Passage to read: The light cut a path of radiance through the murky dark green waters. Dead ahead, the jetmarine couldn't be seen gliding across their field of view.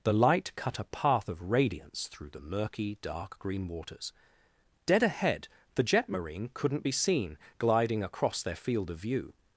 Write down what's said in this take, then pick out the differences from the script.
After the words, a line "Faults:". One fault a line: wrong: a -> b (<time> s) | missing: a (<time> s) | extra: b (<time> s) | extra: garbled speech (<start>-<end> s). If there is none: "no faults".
The light cut a path of radiance through the murky dark green waters. Dead ahead, the jetmarine couldn't be seen gliding across their field of view.
Faults:
no faults